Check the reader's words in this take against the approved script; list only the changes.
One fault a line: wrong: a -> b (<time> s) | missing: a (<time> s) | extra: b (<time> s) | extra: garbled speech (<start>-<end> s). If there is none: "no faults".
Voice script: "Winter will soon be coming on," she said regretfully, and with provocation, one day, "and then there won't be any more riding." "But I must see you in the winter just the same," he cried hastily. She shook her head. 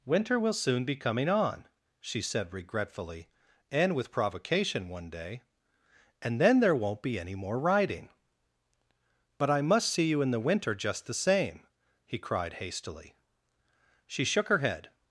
no faults